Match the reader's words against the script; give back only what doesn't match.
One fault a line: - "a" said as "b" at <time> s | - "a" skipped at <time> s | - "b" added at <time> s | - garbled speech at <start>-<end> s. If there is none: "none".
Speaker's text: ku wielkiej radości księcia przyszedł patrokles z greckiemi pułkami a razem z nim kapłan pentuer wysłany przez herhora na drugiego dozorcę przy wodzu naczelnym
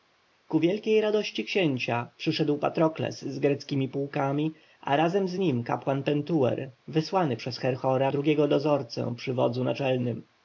- "na" skipped at 8.1 s